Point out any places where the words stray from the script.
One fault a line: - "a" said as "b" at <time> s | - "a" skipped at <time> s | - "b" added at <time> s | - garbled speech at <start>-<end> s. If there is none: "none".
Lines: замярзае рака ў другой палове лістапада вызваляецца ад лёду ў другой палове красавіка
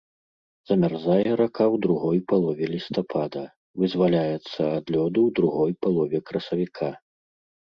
none